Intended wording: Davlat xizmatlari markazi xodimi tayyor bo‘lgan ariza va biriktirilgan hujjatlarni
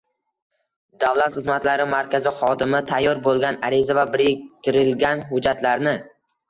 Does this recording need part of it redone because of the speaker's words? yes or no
no